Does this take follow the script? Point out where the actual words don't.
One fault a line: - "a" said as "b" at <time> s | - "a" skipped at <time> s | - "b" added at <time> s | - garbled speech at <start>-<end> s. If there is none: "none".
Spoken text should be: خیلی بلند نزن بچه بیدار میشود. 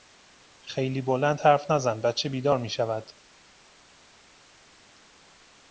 - "حرف" added at 1.4 s